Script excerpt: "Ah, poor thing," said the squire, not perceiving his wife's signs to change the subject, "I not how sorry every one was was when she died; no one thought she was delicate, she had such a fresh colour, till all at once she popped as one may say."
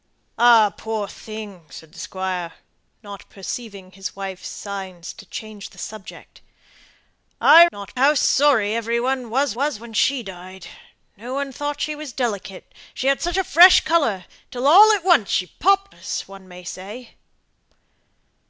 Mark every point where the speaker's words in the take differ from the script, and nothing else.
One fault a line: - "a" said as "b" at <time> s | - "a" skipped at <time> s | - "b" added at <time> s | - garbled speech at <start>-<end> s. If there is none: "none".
none